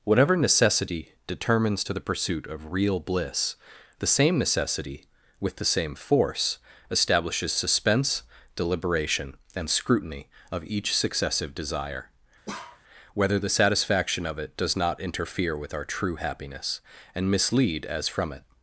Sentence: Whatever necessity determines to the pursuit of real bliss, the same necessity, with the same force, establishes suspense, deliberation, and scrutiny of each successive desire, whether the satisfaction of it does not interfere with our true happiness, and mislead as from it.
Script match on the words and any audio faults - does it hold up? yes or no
no